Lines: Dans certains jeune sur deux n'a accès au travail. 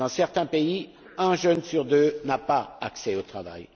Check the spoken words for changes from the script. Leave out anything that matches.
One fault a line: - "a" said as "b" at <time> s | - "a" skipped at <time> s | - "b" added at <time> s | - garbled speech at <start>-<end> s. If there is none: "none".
- "pays un" added at 0.5 s
- "pas" added at 2.4 s